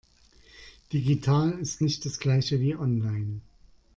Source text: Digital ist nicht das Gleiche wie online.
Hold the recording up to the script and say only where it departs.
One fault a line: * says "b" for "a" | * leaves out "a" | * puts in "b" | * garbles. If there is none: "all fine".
all fine